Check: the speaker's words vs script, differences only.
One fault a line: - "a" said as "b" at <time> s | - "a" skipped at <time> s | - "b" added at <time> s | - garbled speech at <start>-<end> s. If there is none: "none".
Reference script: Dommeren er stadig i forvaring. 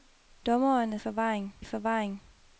- "stadig" said as "forvaring" at 0.9 s